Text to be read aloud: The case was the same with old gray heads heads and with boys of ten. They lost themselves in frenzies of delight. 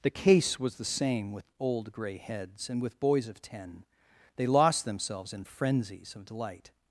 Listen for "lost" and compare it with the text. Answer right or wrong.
right